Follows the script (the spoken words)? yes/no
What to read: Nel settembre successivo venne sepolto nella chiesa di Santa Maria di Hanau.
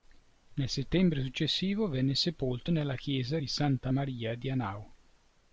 yes